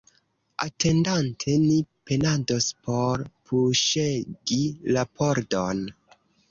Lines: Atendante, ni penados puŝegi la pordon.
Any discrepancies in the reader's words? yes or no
yes